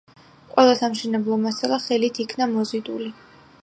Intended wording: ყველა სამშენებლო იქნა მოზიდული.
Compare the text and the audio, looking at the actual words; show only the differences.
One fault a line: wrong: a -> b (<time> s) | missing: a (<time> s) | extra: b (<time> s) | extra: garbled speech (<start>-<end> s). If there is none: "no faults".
extra: მასალა ხელით (1.5 s)